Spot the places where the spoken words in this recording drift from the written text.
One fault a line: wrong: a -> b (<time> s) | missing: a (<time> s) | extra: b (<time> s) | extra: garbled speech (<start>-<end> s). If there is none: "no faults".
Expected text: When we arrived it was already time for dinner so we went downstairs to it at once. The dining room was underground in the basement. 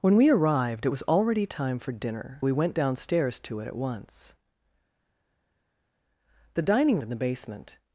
missing: so (2.4 s)
missing: room was underground (7.0 s)